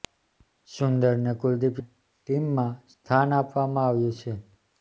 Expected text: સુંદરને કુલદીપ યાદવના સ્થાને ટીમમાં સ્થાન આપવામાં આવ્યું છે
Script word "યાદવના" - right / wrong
wrong